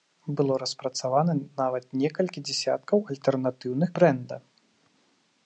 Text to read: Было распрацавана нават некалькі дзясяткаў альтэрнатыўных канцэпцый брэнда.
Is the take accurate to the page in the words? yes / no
no